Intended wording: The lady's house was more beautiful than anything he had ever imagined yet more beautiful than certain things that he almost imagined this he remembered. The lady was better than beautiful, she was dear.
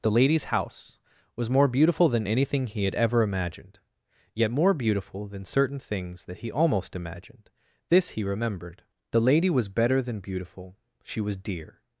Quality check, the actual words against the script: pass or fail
pass